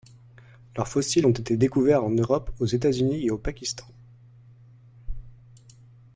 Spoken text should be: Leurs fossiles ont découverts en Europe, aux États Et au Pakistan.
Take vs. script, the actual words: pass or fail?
fail